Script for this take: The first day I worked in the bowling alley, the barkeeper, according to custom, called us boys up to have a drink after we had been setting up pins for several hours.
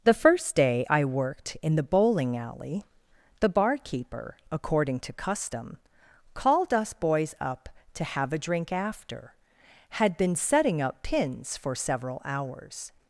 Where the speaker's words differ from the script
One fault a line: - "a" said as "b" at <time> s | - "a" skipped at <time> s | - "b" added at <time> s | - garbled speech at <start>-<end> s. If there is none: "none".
- "we" skipped at 9.3 s